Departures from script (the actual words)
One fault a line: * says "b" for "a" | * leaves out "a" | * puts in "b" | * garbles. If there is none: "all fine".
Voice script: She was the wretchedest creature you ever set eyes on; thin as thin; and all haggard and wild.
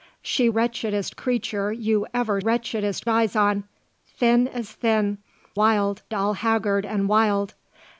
* leaves out "was the"
* says "wretchedest" for "set"
* says "wild" for "and"